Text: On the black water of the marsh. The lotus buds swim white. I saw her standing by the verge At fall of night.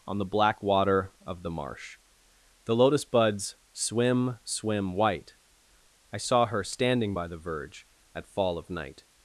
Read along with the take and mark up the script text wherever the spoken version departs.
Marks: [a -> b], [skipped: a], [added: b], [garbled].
On the black water of the marsh. The lotus buds swim [added: swim] white. I saw her standing by the verge At fall of night.